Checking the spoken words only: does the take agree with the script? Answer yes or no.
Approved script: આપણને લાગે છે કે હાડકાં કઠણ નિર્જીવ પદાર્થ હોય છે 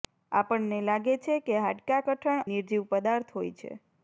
yes